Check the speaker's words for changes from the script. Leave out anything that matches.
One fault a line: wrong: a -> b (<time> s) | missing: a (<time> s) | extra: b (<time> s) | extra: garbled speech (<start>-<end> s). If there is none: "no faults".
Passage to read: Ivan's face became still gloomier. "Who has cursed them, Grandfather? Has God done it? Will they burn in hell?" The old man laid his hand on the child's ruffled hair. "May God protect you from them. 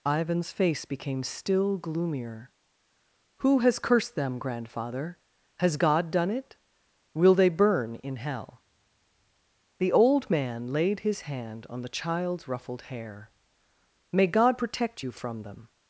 no faults